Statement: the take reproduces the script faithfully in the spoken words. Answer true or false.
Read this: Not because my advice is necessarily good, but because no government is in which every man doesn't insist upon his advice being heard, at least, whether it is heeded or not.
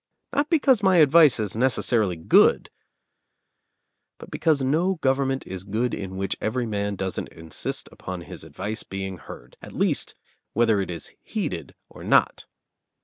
false